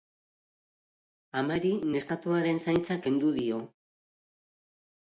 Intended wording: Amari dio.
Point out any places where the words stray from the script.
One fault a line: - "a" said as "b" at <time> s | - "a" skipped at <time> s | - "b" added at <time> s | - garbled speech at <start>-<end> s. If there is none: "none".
- "neskatoaren zaintza kendu" added at 2.0 s